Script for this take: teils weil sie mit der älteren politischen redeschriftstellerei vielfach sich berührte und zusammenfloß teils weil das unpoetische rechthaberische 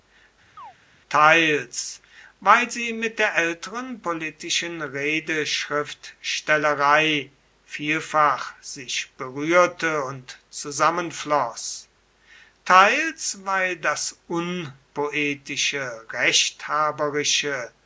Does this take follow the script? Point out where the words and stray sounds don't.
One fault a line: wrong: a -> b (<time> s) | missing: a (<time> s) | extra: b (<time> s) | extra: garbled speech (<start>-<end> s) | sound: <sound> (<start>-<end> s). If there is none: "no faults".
sound: chirp (0.6-0.7 s)